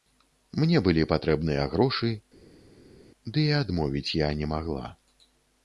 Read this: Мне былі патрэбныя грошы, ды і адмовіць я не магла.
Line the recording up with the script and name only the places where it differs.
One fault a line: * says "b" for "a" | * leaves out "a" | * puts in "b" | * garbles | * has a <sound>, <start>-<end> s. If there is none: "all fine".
all fine